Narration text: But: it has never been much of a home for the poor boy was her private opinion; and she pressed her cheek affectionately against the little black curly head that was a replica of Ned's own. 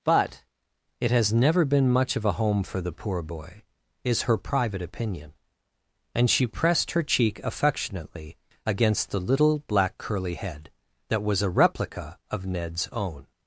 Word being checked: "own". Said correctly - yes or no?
yes